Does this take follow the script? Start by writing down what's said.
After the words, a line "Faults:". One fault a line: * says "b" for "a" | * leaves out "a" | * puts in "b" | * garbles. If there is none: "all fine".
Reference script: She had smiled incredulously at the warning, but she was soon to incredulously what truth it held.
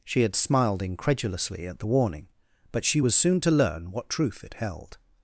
She had smiled incredulously at the warning, but she was soon to learn what truth it held.
Faults:
* says "learn" for "incredulously"